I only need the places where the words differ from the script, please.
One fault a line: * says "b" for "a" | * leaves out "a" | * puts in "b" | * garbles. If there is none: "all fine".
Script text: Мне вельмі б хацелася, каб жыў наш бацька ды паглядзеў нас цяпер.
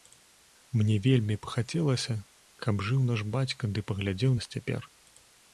all fine